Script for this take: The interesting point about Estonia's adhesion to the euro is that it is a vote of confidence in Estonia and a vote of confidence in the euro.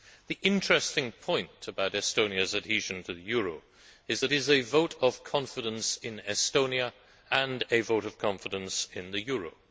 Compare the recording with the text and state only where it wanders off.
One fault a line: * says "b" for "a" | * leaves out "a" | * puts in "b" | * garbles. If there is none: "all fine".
* leaves out "it"